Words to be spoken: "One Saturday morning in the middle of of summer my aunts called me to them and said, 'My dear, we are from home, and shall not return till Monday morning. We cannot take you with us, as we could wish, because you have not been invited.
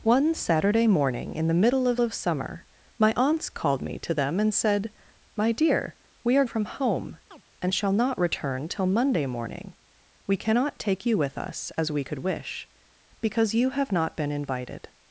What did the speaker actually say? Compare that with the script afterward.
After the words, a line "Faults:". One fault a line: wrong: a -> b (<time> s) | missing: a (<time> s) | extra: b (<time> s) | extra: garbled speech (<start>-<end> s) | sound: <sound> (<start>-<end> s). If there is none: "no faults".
"One Saturday morning in the middle of of summer my aunts called me to them and said, 'My dear, we are from home, and shall not return till Monday morning. We cannot take you with us, as we could wish, because you have not been invited.
Faults:
sound: chirp (7.3-7.4 s)